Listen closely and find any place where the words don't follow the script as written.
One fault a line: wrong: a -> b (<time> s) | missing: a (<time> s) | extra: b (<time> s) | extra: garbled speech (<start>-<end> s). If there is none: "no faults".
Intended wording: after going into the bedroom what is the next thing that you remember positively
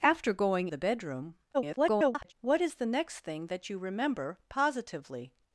missing: into (0.7 s)
extra: garbled speech (1.5-2.3 s)